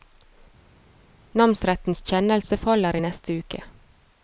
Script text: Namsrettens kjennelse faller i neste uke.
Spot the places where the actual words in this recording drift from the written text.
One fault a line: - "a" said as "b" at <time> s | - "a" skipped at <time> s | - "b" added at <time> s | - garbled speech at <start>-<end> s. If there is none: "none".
none